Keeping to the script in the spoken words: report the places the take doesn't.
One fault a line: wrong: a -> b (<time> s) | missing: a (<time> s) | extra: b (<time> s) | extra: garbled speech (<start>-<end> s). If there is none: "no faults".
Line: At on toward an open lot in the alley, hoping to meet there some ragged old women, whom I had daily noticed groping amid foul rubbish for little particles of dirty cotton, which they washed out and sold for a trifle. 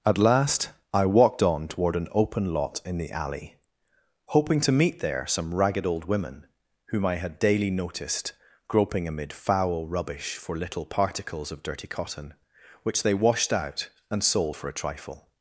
extra: last I walked (0.2 s)